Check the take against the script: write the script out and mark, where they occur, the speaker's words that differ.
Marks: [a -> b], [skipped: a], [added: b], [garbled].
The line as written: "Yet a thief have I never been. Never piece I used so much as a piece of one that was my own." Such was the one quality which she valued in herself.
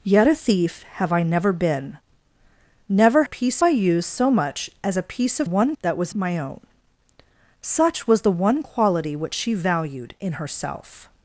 "Yet a thief have I never been. Never piece I used so much as a piece of one that was my own." Such was the one quality which she valued in herself.